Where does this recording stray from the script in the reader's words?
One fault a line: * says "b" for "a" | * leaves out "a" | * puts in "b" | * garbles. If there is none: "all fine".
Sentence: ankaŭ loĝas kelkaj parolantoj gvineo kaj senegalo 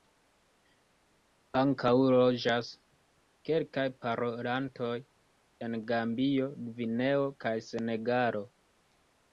* puts in "en gambio"